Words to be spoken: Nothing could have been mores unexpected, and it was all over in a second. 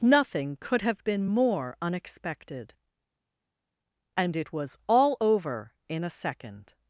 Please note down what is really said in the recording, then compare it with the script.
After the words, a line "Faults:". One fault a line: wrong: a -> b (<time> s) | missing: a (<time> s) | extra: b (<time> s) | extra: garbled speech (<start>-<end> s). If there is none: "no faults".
Nothing could have been more unexpected, and it was all over in a second.
Faults:
wrong: mores -> more (1.3 s)